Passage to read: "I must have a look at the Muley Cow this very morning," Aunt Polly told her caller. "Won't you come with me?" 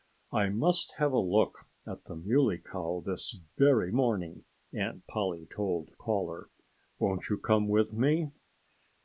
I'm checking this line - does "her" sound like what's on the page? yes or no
no